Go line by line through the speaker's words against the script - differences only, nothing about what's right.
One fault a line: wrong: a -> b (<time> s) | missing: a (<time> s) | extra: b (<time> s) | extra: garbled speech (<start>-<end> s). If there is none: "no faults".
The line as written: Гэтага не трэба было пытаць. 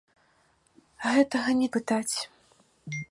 missing: трэба было (1.7 s)